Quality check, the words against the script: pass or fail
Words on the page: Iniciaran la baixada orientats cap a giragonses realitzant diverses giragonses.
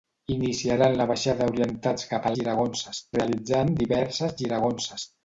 pass